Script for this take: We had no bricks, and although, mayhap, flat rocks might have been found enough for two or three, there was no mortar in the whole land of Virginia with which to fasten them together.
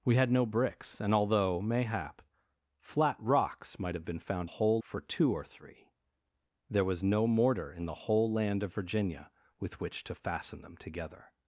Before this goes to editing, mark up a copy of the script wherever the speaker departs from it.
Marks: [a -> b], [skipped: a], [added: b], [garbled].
We had no bricks, and although, mayhap, flat rocks might have been found [enough -> whole] for two or three, there was no mortar in the whole land of Virginia with which to fasten them together.